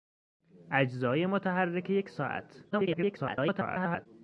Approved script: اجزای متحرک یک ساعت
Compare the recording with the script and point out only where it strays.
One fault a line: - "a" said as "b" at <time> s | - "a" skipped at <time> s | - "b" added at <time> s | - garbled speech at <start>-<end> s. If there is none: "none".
- garbled speech at 2.7-4.1 s